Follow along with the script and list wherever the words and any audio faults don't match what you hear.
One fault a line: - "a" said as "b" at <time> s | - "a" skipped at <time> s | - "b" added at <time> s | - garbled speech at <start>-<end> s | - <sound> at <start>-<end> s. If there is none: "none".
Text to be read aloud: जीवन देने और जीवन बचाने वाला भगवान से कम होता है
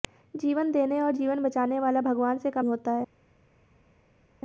none